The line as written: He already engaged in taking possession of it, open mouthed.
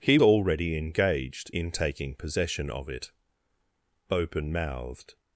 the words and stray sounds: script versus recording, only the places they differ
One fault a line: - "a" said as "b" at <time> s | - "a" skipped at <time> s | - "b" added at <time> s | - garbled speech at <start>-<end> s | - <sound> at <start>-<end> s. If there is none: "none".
none